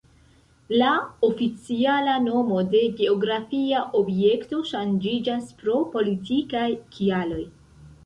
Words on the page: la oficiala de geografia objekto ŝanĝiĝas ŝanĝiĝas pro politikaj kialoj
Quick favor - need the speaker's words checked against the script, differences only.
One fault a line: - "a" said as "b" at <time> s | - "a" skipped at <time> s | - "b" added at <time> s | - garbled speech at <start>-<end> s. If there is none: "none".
- "nomo" added at 2.3 s
- "ŝanĝiĝas" skipped at 5.5 s